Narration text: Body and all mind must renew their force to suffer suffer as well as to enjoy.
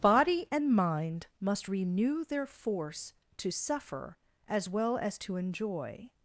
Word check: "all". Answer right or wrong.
wrong